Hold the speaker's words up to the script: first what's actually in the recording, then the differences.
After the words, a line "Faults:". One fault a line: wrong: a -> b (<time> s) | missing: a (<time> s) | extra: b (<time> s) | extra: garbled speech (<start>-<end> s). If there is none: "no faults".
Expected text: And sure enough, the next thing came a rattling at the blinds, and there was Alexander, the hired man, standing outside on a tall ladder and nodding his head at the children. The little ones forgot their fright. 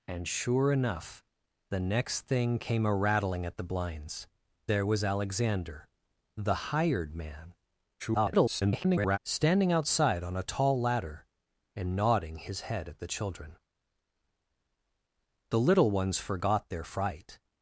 And sure enough, the next thing came a rattling at the blinds, there was Alexander, the hired man, [garbled] standing outside on a tall ladder and nodding his head at the children. The little ones forgot their fright.
Faults:
missing: and (4.3 s)
extra: garbled speech (8.0-9.2 s)